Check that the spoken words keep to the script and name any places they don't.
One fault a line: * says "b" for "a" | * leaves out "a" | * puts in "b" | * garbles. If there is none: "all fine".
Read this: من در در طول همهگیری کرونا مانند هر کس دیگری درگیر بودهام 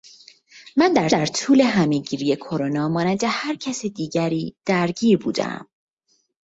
all fine